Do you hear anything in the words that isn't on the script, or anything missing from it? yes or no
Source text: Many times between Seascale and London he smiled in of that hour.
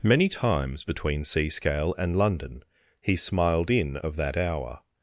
no